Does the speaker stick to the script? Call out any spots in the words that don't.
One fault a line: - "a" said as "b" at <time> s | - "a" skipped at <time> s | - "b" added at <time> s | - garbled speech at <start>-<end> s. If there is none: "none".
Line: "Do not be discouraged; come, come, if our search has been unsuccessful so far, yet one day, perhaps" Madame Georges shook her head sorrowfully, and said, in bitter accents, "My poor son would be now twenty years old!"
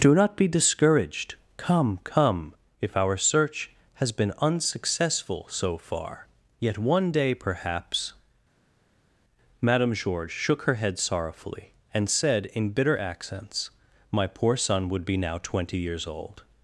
none